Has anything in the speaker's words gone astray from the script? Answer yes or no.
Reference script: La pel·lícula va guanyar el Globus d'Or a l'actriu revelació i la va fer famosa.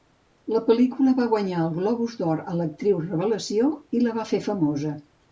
no